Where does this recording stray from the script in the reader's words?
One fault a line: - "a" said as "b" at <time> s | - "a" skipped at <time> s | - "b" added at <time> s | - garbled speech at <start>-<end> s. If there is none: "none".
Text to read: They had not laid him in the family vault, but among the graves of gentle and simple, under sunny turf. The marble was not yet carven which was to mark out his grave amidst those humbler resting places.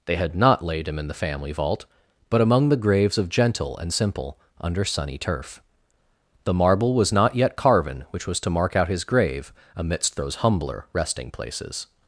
none